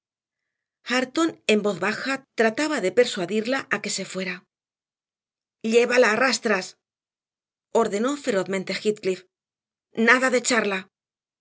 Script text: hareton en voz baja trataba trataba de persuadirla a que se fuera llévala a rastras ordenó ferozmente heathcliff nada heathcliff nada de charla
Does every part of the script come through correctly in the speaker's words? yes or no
no